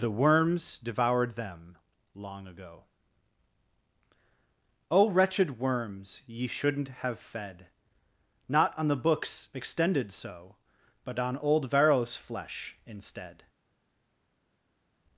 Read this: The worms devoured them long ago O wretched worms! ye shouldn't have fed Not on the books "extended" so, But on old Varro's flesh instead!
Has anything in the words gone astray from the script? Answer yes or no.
no